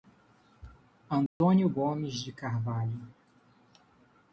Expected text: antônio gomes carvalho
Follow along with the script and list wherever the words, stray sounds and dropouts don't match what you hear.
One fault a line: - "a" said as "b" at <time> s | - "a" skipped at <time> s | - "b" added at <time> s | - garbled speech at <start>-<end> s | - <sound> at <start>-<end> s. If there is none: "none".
- dropout at 1.3-1.4 s
- "de" added at 2.2 s